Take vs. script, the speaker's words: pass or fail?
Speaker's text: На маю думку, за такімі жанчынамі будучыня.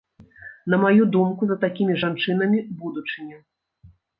pass